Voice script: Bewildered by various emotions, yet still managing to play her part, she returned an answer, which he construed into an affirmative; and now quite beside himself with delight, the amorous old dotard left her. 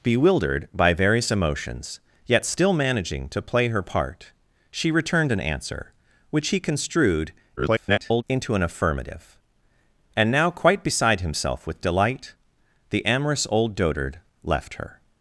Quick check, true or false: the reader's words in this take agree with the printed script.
false